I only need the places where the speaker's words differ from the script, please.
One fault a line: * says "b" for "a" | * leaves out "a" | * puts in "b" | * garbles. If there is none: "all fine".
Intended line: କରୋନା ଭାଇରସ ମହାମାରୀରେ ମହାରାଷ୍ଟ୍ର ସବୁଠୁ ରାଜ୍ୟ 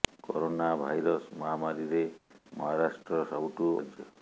all fine